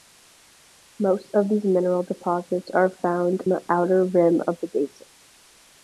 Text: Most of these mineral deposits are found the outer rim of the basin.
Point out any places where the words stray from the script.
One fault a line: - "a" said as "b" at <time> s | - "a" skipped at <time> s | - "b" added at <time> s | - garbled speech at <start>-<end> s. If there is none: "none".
none